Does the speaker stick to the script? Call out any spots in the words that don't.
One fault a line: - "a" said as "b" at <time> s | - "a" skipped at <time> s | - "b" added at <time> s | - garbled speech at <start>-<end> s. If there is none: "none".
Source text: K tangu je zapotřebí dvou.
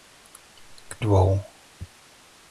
- "tangu je zapotřebí" skipped at 1.0 s